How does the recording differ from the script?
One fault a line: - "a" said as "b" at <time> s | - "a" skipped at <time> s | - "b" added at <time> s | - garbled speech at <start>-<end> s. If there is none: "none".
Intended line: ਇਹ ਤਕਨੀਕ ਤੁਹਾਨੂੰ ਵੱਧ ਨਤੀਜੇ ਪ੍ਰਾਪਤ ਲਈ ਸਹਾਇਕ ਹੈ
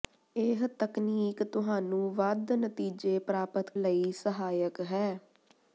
none